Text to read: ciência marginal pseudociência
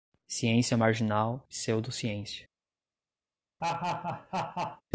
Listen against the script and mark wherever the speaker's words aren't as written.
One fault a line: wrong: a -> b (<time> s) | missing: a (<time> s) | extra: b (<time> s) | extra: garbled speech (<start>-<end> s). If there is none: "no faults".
no faults